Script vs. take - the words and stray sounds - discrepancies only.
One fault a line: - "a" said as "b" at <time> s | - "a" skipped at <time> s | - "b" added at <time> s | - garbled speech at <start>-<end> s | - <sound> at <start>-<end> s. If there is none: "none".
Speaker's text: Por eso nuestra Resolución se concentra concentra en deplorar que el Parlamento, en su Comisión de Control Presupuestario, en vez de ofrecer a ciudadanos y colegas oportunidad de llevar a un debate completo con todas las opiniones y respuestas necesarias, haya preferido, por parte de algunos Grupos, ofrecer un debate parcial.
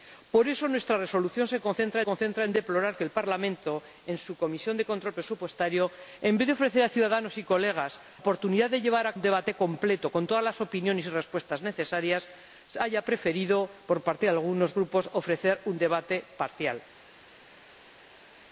none